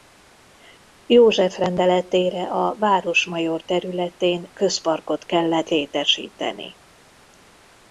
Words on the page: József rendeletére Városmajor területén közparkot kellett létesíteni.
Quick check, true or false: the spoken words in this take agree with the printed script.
false